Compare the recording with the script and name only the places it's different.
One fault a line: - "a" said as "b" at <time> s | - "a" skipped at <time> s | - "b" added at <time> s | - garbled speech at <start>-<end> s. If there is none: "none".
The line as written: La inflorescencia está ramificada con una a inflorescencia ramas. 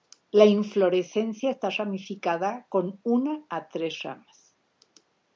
- "inflorescencia" said as "tres" at 3.7 s